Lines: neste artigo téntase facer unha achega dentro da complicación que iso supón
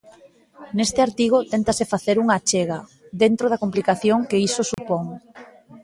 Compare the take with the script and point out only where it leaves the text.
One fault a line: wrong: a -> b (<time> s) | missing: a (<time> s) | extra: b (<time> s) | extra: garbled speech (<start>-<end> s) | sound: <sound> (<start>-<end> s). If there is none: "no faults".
sound: dropout (4.7-4.8 s)